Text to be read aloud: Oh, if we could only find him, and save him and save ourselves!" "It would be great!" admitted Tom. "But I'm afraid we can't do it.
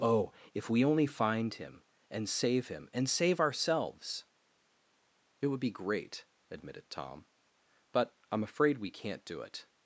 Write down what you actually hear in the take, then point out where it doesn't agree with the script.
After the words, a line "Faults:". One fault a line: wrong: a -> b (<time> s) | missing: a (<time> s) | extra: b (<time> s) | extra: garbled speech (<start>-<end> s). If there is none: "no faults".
Oh, if we only find him, and save him and save ourselves!" "It would be great!" admitted Tom. "But I'm afraid we can't do it.
Faults:
missing: could (0.8 s)